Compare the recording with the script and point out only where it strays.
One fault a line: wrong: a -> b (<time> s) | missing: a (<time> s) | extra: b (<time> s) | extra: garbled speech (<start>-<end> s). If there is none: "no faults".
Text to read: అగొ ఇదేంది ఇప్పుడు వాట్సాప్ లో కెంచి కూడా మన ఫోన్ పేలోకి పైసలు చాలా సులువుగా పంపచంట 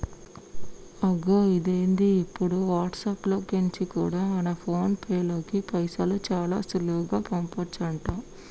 no faults